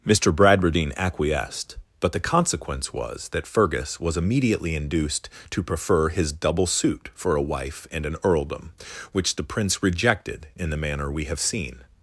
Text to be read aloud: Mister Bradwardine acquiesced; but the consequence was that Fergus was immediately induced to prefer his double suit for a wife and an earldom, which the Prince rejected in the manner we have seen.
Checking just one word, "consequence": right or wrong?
right